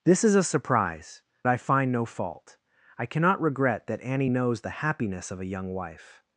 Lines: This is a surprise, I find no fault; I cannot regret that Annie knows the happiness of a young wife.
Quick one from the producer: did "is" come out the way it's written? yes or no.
yes